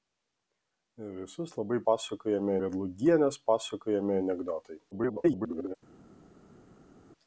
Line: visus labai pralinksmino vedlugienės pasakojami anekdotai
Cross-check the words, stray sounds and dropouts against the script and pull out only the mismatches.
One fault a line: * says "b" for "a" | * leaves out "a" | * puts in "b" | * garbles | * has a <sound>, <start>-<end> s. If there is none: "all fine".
* says "pasakojami" for "pralinksmino"
* garbles